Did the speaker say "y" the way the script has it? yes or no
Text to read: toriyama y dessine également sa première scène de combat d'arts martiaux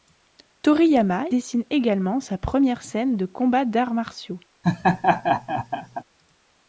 no